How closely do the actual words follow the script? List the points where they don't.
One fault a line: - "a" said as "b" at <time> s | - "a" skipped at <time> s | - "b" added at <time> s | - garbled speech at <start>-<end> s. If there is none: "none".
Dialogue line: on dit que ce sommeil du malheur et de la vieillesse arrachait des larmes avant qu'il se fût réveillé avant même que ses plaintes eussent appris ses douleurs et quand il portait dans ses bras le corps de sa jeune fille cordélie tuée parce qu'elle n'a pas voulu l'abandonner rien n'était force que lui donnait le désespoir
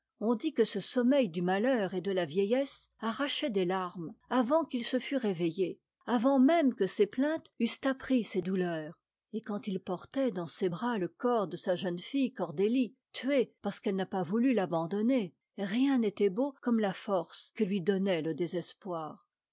- "beau comme la" added at 16.3 s